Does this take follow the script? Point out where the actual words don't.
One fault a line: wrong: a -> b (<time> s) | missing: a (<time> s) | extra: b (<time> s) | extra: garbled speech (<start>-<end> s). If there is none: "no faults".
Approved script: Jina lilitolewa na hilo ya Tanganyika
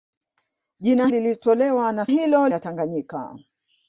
no faults